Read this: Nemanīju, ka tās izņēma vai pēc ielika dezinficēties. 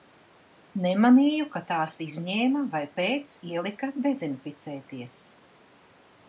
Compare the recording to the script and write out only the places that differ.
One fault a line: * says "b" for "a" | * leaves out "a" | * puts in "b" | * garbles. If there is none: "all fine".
all fine